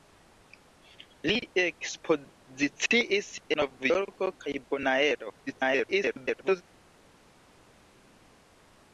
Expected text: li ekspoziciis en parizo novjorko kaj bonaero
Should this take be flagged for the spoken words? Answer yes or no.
yes